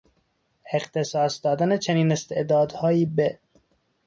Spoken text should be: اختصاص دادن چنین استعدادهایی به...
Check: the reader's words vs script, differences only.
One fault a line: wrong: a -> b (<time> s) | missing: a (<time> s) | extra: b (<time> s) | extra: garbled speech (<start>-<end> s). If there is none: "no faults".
no faults